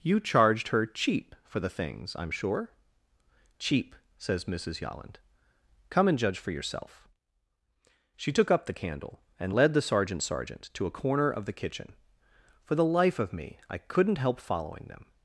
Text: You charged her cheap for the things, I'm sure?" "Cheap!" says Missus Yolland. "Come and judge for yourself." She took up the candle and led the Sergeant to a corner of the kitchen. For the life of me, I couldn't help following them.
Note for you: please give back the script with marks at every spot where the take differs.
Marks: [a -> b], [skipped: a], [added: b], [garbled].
You charged her cheap for the things, I'm sure?" "Cheap!" says Missus Yolland. "Come and judge for yourself." She took up the candle and led the Sergeant [added: Sergeant] to a corner of the kitchen. For the life of me, I couldn't help following them.